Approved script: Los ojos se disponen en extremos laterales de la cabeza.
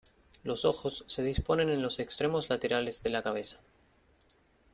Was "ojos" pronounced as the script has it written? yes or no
yes